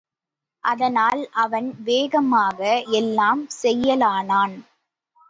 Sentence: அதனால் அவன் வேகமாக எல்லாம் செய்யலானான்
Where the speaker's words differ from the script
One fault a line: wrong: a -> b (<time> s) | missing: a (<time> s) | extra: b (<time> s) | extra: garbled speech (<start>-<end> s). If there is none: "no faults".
no faults